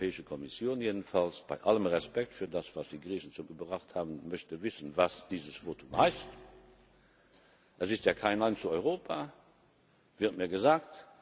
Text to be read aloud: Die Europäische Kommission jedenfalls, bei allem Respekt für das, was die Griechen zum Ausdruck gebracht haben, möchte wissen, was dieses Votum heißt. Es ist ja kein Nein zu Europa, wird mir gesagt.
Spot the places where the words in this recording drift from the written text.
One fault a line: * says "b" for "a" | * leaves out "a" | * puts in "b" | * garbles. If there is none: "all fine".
* leaves out "Ausdruck"